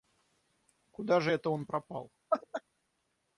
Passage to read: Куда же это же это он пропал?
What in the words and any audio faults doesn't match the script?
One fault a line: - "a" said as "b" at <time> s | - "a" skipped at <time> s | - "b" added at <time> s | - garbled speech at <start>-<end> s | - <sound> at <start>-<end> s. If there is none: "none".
- "же это" skipped at 1.5 s
- laugh at 2.3-2.6 s